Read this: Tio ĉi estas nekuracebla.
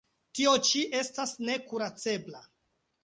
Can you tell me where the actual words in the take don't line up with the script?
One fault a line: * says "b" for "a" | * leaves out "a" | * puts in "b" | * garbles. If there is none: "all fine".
all fine